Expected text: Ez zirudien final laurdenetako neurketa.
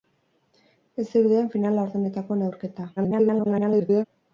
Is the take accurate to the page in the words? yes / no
no